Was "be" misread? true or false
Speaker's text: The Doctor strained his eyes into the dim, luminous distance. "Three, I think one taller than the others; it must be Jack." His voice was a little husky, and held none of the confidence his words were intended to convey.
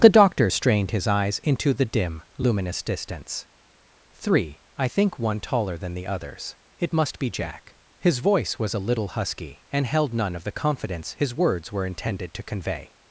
false